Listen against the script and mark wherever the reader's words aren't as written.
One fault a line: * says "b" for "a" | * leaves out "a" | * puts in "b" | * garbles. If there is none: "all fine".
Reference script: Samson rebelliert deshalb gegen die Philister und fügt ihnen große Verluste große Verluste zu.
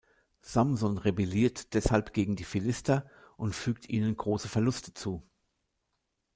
* leaves out "große Verluste"